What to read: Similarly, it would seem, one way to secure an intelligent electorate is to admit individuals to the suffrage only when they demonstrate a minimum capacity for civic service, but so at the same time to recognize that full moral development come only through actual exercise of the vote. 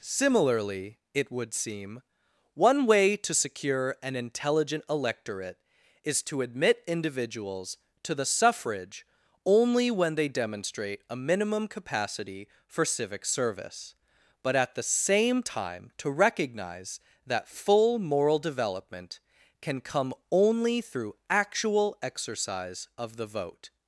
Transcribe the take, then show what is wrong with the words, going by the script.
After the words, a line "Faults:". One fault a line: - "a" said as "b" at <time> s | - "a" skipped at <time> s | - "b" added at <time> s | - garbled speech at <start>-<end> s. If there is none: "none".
Similarly, it would seem, one way to secure an intelligent electorate is to admit individuals to the suffrage only when they demonstrate a minimum capacity for civic service, but at the same time to recognize that full moral development can come only through actual exercise of the vote.
Faults:
- "so" skipped at 14.5 s
- "can" added at 19.6 s